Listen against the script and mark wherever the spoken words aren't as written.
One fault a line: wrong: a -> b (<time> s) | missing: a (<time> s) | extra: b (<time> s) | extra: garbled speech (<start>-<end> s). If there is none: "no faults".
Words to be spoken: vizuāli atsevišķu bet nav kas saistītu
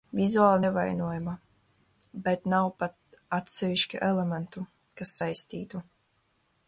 wrong: atsevišķu -> nevainojama (0.6 s)
extra: pat atsevišķu elementu (2.8 s)